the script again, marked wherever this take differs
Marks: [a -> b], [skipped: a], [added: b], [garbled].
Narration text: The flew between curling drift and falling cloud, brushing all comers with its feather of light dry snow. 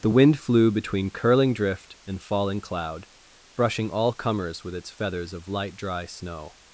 The [added: wind] flew between curling drift and falling cloud, brushing all comers with its [feather -> feathers] of light dry snow.